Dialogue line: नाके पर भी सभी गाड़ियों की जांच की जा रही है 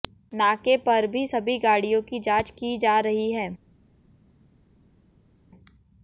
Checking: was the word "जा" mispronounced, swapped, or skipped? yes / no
no